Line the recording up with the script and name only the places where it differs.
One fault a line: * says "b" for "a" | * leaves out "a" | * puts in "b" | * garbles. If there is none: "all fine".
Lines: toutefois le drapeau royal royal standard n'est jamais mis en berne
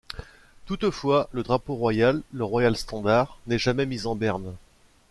* puts in "le"